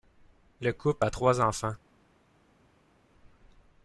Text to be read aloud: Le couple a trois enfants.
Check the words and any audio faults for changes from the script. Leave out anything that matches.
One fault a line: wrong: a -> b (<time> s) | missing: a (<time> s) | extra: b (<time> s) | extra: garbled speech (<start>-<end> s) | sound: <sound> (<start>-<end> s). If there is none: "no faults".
no faults